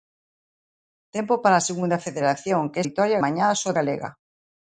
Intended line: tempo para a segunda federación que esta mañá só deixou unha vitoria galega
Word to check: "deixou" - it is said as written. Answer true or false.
false